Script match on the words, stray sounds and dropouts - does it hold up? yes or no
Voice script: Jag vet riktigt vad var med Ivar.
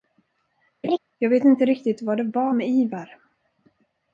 no